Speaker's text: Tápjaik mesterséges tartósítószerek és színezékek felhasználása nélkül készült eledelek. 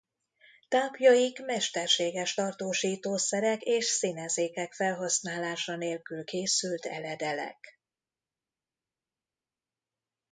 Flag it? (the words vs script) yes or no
no